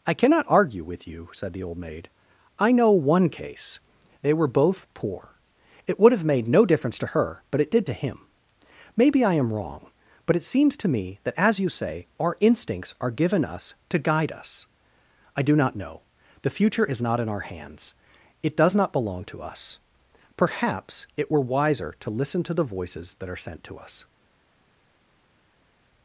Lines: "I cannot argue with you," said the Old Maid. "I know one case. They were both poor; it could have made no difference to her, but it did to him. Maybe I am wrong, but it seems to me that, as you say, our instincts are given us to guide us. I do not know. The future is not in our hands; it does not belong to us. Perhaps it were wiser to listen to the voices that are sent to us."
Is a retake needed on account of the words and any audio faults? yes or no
yes